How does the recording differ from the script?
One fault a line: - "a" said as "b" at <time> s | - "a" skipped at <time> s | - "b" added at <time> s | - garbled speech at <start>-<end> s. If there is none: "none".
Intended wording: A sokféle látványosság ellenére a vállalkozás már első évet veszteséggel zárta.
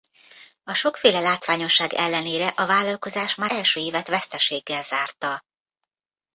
none